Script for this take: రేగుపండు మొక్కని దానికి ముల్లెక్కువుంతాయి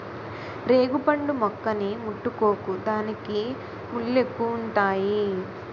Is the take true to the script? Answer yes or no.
no